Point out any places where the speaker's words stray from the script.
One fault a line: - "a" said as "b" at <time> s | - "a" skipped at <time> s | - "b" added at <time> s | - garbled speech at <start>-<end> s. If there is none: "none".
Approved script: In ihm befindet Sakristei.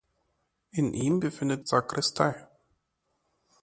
none